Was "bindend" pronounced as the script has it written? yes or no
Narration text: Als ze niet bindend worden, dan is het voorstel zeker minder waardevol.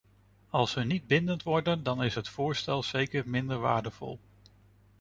yes